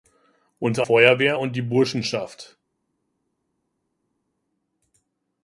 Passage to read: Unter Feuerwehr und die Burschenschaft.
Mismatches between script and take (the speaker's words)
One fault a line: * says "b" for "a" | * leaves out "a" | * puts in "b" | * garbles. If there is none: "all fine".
all fine